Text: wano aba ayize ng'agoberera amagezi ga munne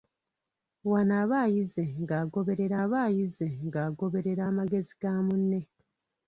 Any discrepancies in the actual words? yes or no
yes